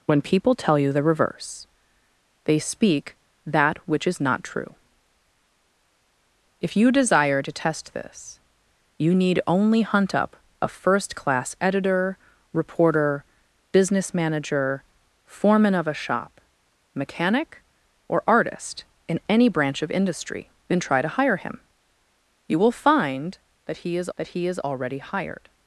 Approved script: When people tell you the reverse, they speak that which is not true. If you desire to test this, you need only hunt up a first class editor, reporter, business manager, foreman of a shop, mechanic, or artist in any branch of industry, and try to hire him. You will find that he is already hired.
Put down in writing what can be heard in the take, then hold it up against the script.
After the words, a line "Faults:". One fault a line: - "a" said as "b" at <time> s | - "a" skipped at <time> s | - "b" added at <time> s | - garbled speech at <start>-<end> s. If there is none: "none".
When people tell you the reverse, they speak that which is not true. If you desire to test this, you need only hunt up a first class editor, reporter, business manager, foreman of a shop, mechanic, or artist in any branch of industry, and try to hire him. You will find that he is that he is already hired.
Faults:
- "that he is" added at 24.2 s